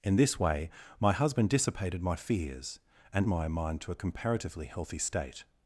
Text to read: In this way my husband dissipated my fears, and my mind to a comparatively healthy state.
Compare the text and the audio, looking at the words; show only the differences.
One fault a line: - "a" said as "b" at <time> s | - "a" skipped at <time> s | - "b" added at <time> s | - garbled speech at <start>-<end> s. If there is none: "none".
none